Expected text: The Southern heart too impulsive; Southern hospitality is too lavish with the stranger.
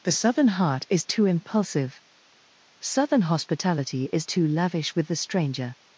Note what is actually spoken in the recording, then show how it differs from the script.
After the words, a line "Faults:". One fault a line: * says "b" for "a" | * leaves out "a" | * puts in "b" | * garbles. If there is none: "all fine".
The Southern heart is too impulsive; Southern hospitality is too lavish with the stranger.
Faults:
* puts in "is"